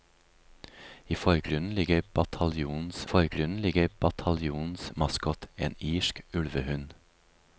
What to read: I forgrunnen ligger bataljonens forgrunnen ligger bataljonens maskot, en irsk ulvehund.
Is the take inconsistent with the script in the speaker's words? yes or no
no